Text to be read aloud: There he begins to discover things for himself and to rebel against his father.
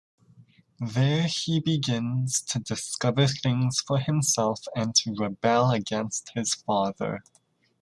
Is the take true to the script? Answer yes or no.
yes